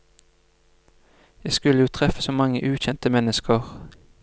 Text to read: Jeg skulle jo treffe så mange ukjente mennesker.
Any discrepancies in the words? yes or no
no